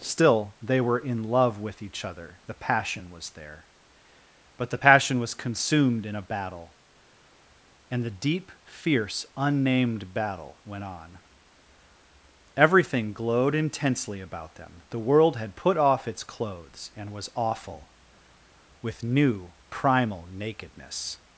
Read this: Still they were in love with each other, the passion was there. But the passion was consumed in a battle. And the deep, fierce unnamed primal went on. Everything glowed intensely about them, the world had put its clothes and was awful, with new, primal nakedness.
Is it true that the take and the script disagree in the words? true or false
true